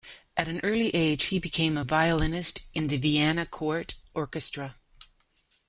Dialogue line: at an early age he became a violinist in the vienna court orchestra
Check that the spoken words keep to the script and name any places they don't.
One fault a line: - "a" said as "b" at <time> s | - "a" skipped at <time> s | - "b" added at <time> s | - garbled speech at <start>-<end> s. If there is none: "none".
none